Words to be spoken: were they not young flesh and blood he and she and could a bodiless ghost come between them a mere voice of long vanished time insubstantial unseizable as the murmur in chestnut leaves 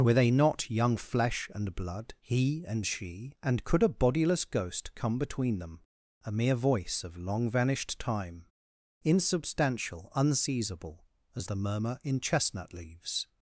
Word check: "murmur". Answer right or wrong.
right